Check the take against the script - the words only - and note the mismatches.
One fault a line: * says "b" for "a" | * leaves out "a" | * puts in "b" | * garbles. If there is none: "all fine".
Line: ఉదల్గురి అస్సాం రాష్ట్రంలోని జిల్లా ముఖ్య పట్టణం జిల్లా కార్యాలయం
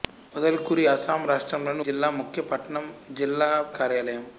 all fine